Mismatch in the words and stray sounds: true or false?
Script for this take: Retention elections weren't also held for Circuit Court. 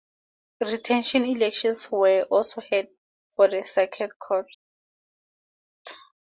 true